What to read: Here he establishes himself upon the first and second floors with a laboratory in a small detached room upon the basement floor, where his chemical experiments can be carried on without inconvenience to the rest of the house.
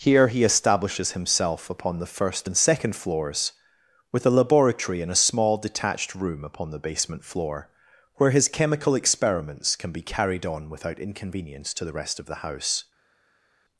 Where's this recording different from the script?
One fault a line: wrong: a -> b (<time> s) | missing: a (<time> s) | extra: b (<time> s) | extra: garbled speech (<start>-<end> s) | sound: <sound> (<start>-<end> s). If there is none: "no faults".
no faults